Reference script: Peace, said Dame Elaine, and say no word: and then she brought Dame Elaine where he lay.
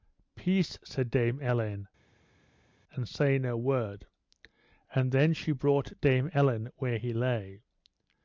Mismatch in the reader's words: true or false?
false